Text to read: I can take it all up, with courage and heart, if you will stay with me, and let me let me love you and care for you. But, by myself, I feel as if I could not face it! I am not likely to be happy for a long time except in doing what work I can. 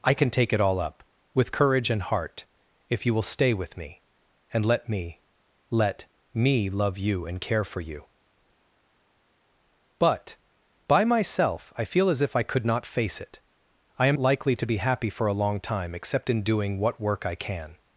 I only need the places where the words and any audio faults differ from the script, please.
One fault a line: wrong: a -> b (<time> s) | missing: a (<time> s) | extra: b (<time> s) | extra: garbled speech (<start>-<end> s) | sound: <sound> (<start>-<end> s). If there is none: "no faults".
missing: not (14.2 s)